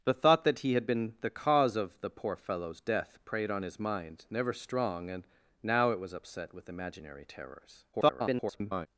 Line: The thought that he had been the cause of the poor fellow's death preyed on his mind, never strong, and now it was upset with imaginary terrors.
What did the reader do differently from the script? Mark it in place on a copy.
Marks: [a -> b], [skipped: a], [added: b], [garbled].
The thought that he had been the cause of the poor fellow's death preyed on his mind, never strong, and now it was upset with imaginary terrors. [garbled]